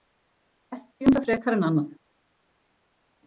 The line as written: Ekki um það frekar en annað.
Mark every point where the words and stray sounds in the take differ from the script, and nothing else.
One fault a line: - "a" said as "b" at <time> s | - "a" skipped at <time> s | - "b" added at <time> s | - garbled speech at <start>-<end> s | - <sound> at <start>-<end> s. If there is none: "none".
none